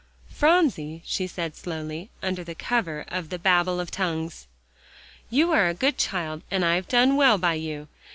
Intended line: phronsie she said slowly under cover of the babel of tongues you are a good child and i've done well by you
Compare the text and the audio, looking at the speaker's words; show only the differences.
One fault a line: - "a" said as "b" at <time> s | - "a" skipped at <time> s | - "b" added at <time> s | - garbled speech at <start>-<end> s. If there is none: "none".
none